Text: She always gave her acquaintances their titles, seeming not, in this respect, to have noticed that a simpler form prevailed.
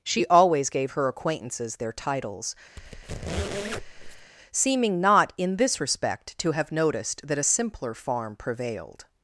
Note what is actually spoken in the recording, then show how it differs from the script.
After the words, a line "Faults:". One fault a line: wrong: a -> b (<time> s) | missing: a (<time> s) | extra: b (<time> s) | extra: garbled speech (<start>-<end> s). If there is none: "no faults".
She always gave her acquaintances their titles, seeming not, in this respect, to have noticed that a simpler farm prevailed.
Faults:
wrong: form -> farm (7.9 s)